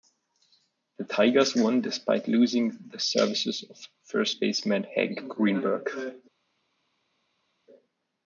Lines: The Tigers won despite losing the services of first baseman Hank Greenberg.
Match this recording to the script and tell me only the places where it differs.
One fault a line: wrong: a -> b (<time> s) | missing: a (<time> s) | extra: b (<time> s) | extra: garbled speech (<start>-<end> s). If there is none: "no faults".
no faults